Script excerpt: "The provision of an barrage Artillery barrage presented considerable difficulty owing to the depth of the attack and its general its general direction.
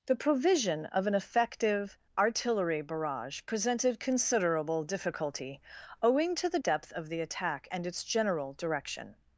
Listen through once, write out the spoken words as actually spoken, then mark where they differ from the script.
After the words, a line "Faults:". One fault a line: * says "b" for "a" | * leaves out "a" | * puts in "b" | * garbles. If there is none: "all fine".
"The provision of an effective Artillery barrage presented considerable difficulty owing to the depth of the attack and its general direction.
Faults:
* says "effective" for "barrage"
* leaves out "its general"